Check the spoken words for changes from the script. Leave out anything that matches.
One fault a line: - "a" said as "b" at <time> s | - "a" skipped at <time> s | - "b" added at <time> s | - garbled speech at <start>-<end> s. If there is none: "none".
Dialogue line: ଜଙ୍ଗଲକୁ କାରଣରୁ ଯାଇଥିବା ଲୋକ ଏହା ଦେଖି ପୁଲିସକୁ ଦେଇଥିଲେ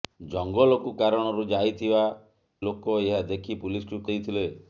none